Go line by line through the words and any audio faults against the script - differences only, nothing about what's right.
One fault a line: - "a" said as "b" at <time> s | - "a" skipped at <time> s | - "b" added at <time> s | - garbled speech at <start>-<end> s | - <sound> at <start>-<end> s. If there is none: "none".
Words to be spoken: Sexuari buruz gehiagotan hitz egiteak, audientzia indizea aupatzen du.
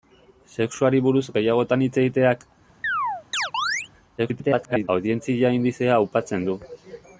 - chirp at 2.8-3.9 s
- garbled speech at 4.2-4.9 s